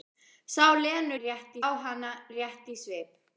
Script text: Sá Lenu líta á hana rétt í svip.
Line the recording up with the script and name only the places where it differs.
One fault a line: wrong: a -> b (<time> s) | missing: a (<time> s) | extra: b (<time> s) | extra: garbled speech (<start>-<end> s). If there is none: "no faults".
wrong: líta -> rétt (1.2 s)